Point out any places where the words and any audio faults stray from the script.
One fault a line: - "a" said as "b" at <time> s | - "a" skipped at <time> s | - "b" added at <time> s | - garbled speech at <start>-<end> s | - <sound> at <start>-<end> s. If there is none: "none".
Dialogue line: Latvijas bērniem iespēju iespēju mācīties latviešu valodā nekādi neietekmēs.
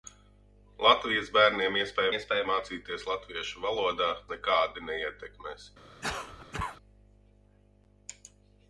- cough at 6.0-6.8 s